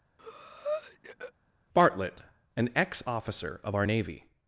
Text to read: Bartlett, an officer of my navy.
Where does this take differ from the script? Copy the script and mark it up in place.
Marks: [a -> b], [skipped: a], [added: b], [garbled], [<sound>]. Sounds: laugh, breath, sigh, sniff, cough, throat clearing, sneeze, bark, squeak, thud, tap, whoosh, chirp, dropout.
[breath] Bartlett, an [added: ex] officer of [my -> our] navy.